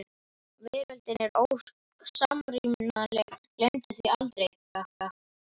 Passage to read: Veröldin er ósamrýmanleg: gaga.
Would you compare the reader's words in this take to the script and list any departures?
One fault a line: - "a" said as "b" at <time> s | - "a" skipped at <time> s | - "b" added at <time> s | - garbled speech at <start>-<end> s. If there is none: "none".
- "gleymdu því aldrei" added at 3.6 s